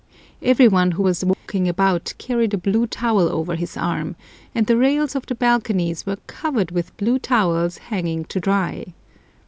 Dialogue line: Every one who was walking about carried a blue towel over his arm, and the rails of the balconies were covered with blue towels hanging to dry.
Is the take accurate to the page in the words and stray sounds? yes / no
no